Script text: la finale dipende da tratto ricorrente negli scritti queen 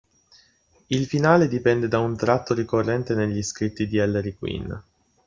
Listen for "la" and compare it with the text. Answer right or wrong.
wrong